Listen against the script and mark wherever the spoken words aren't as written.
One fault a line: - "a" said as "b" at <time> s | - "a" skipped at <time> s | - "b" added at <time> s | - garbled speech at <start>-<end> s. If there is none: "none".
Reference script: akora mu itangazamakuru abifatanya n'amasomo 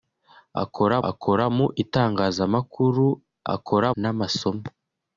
- "akora" added at 1.1 s
- "abifatanya" said as "akora" at 3.5 s